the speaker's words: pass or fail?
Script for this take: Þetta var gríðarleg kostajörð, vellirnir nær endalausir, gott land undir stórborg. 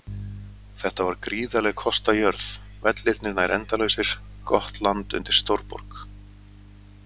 pass